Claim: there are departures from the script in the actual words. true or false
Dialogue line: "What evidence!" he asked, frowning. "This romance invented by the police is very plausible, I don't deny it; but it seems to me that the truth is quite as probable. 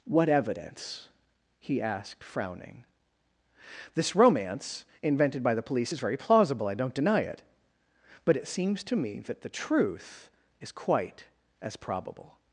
false